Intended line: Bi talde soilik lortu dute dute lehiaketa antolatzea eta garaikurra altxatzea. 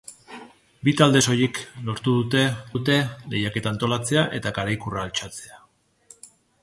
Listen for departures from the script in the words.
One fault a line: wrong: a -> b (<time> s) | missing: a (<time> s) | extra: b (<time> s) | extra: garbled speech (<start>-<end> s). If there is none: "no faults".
no faults